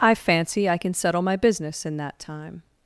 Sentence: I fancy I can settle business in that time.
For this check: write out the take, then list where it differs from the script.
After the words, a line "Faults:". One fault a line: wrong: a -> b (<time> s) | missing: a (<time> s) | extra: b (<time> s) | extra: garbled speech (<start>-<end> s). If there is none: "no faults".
I fancy I can settle my business in that time.
Faults:
extra: my (1.2 s)